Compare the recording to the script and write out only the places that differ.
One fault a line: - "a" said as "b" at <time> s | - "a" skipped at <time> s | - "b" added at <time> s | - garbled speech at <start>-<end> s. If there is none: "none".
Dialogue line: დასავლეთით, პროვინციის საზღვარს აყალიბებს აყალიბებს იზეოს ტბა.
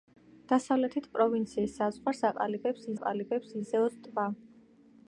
none